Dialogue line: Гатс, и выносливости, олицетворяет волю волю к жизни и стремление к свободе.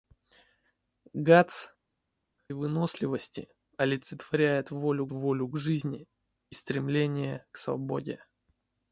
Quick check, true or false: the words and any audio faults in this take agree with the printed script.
true